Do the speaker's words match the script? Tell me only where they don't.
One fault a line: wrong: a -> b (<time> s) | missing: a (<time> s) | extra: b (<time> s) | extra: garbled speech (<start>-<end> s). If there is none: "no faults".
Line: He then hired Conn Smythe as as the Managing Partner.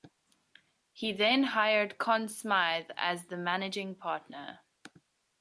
missing: as (3.3 s)